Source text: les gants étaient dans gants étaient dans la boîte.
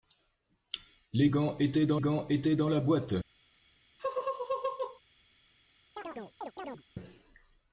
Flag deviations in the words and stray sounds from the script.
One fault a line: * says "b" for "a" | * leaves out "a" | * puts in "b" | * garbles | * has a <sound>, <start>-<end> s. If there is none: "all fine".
* has a laugh, 4.0-5.0 s
* has a chirp, 6.0-6.8 s